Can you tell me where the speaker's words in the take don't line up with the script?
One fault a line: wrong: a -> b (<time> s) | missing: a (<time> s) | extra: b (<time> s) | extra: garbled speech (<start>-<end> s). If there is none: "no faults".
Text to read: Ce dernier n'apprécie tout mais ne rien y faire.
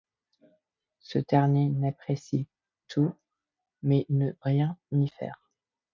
no faults